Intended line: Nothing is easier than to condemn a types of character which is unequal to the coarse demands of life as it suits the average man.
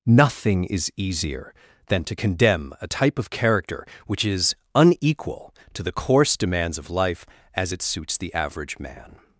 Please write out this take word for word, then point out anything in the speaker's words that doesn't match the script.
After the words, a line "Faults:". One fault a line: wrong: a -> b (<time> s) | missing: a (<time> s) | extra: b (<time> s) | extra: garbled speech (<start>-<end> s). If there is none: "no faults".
Nothing is easier than to condemn a type of character which is unequal to the coarse demands of life as it suits the average man.
Faults:
wrong: types -> type (2.8 s)